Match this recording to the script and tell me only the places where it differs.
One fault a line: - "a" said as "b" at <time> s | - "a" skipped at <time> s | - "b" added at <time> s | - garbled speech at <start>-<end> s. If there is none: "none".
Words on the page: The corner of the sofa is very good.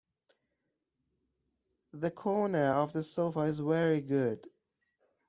none